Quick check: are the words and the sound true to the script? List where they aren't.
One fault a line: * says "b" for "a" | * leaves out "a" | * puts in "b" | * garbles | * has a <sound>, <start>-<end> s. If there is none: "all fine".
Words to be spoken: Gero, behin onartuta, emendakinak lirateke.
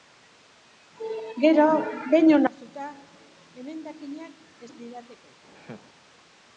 * has a laugh, 5.5-5.9 s